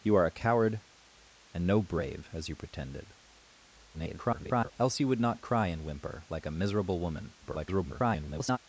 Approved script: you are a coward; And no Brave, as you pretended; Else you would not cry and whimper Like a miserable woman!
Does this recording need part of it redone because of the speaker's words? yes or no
yes